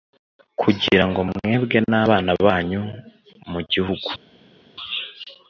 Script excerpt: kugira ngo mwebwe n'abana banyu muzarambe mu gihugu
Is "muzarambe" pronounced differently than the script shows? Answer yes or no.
yes